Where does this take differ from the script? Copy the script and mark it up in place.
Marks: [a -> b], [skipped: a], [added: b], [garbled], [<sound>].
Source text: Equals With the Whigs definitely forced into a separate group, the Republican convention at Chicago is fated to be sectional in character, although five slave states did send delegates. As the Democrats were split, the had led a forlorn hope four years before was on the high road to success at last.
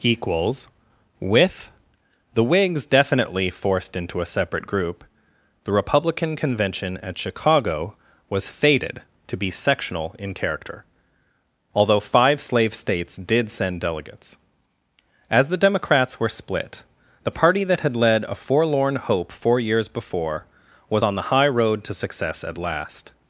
Equals With the Whigs definitely forced into a separate group, the Republican convention at Chicago [is -> was] fated to be sectional in character, although five slave states did send delegates. As the Democrats were split, the [added: party that] had led a forlorn hope four years before was on the high road to success at last.